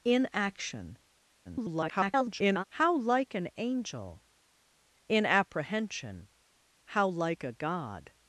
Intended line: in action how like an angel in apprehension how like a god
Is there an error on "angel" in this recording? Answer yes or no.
no